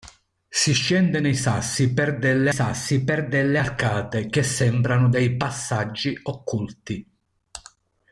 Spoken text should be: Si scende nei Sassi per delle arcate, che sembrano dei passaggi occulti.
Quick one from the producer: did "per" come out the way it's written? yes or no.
yes